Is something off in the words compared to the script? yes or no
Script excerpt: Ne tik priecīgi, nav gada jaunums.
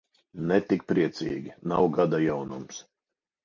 no